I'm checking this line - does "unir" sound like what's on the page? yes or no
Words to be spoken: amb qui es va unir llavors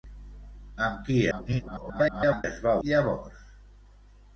no